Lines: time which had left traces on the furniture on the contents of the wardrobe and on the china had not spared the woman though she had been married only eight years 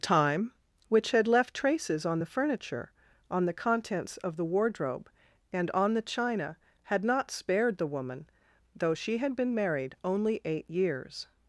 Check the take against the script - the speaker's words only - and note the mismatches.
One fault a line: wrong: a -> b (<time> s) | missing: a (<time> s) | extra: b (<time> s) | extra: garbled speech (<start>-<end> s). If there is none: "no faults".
no faults